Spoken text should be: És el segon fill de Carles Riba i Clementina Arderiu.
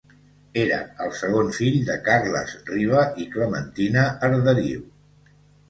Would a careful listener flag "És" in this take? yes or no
yes